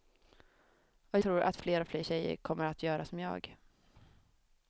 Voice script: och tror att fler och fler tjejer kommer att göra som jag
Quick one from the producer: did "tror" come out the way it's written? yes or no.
yes